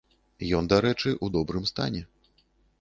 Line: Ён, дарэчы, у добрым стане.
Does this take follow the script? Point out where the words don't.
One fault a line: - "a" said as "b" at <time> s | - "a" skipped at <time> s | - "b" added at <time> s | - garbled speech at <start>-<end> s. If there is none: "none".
none